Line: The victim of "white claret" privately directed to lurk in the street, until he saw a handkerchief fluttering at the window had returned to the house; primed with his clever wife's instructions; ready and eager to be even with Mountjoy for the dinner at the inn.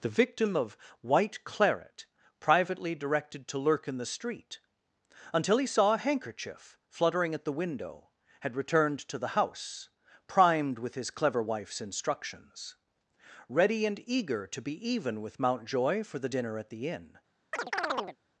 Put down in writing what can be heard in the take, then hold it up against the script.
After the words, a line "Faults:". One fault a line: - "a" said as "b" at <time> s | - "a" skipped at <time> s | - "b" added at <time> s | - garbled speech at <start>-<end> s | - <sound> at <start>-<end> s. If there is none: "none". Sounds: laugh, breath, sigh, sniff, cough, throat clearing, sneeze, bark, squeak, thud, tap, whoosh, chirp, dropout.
The victim of "white claret" privately directed to lurk in the street, until he saw a handkerchief fluttering at the window had returned to the house; primed with his clever wife's instructions; ready and eager to be even with Mountjoy for the dinner at the inn.
Faults:
- chirp at 17.5-18.2 s